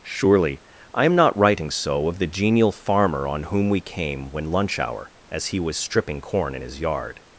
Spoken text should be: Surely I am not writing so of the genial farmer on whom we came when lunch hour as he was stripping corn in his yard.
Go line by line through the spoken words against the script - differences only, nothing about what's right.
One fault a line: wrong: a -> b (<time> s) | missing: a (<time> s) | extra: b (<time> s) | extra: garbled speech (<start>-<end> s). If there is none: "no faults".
no faults